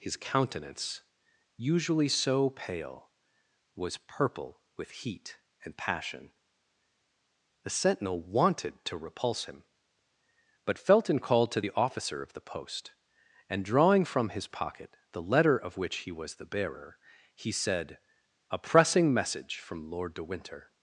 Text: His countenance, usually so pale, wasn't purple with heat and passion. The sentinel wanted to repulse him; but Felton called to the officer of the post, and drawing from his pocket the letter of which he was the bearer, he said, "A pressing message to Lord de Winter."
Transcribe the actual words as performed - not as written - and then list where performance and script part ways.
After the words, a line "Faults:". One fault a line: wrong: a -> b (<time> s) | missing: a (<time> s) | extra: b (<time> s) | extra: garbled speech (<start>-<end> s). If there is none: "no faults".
His countenance, usually so pale, was purple with heat and passion. The sentinel wanted to repulse him; but Felton called to the officer of the post, and drawing from his pocket the letter of which he was the bearer, he said, "A pressing message from Lord de Winter."
Faults:
wrong: wasn't -> was (3.8 s)
wrong: to -> from (19.6 s)